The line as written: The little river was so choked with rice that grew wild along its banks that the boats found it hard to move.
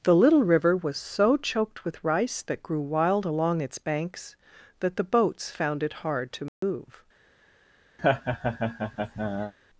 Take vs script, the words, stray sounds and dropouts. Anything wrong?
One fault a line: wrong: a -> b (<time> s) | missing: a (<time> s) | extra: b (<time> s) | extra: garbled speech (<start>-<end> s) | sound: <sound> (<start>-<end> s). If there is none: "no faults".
sound: dropout (6.5-6.6 s)
sound: laugh (8.0-9.5 s)